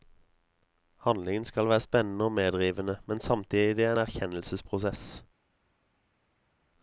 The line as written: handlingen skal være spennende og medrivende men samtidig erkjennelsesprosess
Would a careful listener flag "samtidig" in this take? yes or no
no